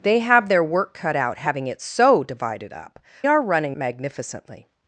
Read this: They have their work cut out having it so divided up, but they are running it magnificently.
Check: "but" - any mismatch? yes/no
yes